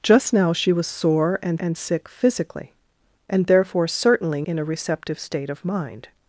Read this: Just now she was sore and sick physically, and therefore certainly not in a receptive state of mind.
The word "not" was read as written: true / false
false